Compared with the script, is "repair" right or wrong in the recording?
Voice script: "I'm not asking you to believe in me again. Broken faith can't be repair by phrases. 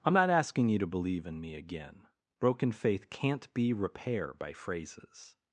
right